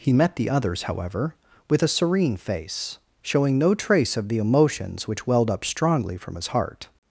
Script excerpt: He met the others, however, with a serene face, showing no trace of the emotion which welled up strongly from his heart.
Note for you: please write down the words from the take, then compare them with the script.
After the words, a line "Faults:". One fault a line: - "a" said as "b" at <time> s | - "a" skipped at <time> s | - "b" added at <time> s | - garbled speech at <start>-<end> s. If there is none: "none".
He met the others, however, with a serene face, showing no trace of the emotions which welled up strongly from his heart.
Faults:
- "emotion" said as "emotions" at 4.4 s